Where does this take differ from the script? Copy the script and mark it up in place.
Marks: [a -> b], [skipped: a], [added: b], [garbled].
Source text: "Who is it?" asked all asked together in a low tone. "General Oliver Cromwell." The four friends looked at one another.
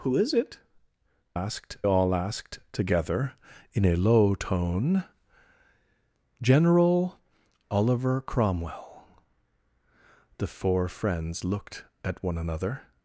"Who is it?" asked all asked together in a low tone. "General Oliver Cromwell." The four friends looked at one another.